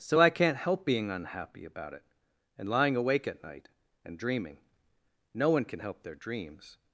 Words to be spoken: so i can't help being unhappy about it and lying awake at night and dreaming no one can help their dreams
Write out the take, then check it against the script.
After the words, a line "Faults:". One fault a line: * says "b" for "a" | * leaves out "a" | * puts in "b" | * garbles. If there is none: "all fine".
so i can't help being unhappy about it and lying awake at night and dreaming no one can help their dreams
Faults:
all fine